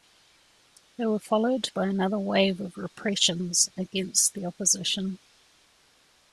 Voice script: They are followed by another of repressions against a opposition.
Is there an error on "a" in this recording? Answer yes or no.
yes